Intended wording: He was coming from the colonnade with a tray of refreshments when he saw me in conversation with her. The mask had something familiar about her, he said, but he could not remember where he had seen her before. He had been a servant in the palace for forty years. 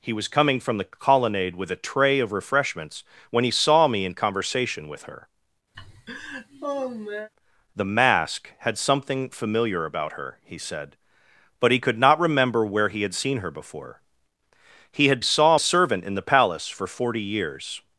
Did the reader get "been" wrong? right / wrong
wrong